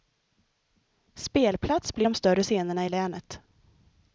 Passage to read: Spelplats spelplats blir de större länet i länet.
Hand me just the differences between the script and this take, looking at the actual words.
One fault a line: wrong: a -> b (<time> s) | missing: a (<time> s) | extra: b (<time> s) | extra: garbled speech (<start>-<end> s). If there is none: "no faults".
missing: spelplats (1.9 s)
wrong: länet -> scenerna (2.4 s)